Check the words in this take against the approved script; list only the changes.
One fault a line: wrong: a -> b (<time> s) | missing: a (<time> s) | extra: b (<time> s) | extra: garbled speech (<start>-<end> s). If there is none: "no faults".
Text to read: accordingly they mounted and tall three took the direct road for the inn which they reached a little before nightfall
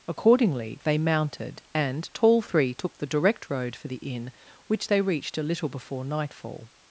no faults